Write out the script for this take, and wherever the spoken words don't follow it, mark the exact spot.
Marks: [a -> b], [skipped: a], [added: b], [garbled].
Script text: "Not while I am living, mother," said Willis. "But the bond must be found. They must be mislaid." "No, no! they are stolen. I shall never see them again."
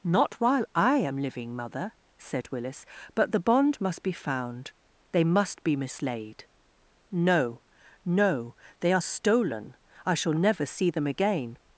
"Not while I am living, mother," said Willis. "But the bond must be found. They must be mislaid." "No, no! they are stolen. I shall never see them again."